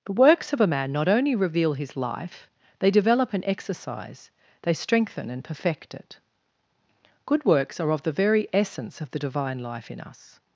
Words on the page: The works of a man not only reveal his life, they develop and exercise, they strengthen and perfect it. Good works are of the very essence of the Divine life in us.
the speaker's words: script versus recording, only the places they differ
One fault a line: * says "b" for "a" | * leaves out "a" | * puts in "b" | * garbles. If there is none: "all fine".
all fine